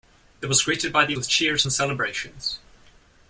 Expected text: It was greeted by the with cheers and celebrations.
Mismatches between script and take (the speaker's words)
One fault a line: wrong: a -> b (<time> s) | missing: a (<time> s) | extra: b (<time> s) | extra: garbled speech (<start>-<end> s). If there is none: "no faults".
no faults